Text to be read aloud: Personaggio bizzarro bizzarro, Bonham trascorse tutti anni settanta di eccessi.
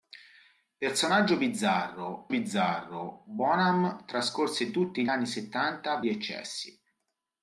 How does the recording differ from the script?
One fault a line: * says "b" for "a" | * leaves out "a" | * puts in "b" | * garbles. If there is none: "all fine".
all fine